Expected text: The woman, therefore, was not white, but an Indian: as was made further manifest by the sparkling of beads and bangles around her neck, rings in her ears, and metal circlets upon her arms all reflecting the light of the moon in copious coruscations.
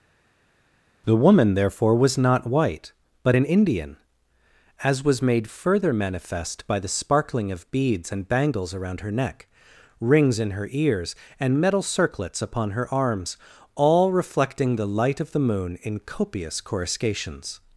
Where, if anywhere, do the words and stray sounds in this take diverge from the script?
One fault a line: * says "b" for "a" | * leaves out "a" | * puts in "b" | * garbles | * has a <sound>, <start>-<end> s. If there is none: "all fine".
all fine